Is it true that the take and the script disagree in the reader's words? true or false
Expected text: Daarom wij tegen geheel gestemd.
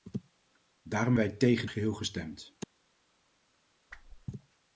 false